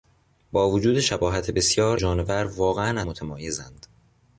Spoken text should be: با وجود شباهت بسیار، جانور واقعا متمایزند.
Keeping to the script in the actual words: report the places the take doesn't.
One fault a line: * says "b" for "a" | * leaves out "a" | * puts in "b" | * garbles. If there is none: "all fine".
all fine